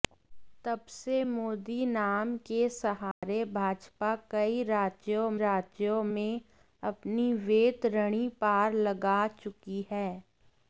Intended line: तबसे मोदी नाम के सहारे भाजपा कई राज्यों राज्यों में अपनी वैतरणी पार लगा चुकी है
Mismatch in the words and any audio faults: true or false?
true